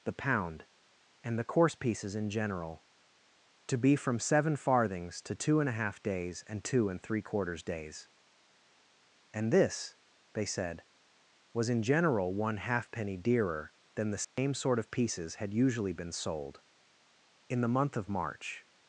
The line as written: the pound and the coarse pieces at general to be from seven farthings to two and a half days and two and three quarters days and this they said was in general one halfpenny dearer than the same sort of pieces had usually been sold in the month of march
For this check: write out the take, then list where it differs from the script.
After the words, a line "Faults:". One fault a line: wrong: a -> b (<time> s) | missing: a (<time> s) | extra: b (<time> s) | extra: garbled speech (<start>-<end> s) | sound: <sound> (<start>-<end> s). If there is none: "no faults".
the pound and the coarse pieces in general to be from seven farthings to two and a half days and two and three quarters days and this they said was in general one halfpenny dearer than the same sort of pieces had usually been sold in the month of march
Faults:
wrong: at -> in (2.1 s)
sound: dropout (14.2-14.4 s)